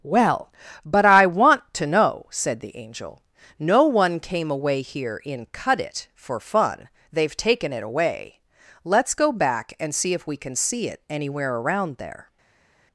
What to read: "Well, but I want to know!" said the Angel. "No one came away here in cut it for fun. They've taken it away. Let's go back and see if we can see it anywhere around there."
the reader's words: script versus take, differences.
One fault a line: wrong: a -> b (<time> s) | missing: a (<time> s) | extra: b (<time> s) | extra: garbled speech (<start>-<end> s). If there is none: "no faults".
no faults